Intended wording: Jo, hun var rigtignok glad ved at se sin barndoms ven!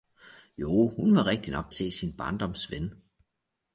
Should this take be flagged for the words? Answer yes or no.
yes